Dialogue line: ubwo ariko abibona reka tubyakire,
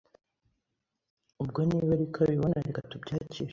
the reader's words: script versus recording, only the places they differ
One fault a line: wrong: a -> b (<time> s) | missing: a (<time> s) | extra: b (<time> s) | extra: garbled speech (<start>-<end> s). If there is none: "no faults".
extra: niba (1.7 s)